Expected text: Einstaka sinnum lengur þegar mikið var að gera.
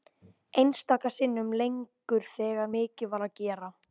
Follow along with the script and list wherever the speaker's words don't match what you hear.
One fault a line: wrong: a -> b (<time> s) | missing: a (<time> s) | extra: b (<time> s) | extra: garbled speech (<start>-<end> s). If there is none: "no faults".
no faults